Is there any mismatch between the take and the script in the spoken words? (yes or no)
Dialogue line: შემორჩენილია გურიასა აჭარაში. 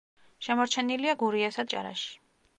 no